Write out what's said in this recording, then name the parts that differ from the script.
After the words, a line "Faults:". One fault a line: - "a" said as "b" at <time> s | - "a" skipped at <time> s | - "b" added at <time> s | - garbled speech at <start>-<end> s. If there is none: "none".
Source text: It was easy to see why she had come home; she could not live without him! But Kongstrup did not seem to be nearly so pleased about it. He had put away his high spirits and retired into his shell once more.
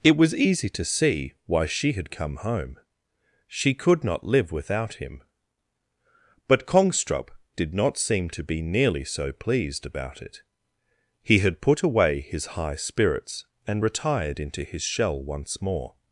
It was easy to see why she had come home; she could not live without him! But Kongstrup did not seem to be nearly so pleased about it. He had put away his high spirits and retired into his shell once more.
Faults:
none